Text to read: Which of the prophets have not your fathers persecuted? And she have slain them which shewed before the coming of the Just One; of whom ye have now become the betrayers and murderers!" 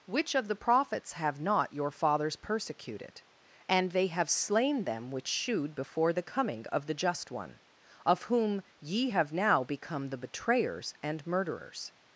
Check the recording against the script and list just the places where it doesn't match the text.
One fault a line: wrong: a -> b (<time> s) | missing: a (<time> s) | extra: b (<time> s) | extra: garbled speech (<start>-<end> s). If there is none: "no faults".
wrong: she -> they (3.9 s)